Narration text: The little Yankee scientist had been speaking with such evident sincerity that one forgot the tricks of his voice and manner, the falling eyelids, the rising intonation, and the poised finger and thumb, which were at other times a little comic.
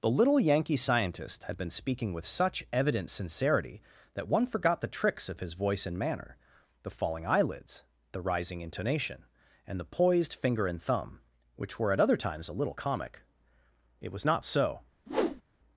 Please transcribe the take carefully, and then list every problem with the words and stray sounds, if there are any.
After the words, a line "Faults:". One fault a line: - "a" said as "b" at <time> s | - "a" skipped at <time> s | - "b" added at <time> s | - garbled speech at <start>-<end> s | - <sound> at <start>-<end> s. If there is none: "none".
The little Yankee scientist had been speaking with such evident sincerity that one forgot the tricks of his voice and manner, the falling eyelids, the rising intonation, and the poised finger and thumb, which were at other times a little comic. It was not so
Faults:
- "It was not so" added at 14.0 s
- whoosh at 15.1-15.4 s